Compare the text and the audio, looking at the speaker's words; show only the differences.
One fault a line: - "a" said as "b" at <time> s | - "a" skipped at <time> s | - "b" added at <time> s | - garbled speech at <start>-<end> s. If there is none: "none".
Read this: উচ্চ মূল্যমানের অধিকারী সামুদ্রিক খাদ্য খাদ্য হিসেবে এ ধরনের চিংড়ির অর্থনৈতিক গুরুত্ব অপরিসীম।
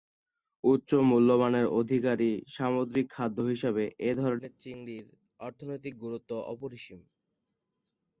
- "খাদ্য" skipped at 3.4 s